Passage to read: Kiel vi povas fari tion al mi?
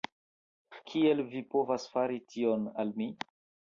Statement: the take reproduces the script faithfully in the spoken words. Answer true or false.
true